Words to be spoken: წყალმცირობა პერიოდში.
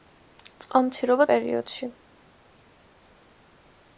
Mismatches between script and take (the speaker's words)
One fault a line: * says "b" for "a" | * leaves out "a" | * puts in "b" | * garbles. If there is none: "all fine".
all fine